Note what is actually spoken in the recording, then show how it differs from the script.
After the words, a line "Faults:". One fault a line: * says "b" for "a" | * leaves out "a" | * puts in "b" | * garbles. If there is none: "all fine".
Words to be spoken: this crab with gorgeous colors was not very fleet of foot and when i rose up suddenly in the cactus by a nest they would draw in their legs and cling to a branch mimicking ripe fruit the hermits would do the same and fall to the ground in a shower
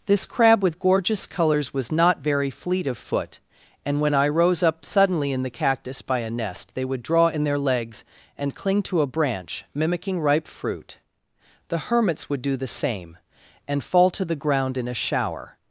this crab with gorgeous colors was not very fleet of foot and when i rose up suddenly in the cactus by a nest they would draw in their legs and cling to a branch mimicking ripe fruit the hermits would do the same and fall to the ground in a shower
Faults:
all fine